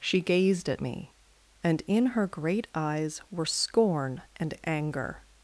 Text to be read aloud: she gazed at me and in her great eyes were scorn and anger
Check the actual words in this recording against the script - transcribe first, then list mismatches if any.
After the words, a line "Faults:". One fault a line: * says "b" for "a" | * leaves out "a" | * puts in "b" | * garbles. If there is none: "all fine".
she gazed at me and in her great eyes were scorn and anger
Faults:
all fine